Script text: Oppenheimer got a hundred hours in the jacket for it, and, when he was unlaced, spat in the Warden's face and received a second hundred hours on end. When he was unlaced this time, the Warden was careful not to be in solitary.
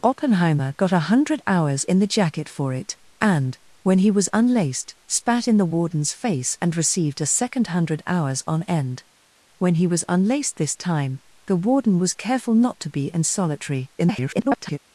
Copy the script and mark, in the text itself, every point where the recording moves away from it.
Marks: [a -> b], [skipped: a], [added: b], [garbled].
Oppenheimer got a hundred hours in the jacket for it, and, when he was unlaced, spat in the Warden's face and received a second hundred hours on end. When he was unlaced this time, the Warden was careful not to be in solitary. [garbled]